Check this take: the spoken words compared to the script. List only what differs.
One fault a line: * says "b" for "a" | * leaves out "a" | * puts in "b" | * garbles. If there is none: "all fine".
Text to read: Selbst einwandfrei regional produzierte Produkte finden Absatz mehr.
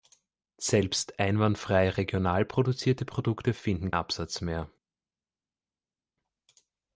all fine